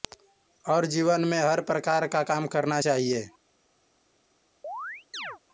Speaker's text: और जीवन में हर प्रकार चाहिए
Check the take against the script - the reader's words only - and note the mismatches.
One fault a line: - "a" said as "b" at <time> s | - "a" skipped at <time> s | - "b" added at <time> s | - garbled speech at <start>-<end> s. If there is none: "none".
- "का काम करना" added at 2.1 s